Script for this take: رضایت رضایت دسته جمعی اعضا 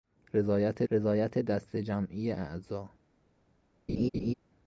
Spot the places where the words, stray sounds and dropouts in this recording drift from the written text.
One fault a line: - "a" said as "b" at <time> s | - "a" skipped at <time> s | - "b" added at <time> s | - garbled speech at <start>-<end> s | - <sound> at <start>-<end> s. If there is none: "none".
- laugh at 3.9-4.3 s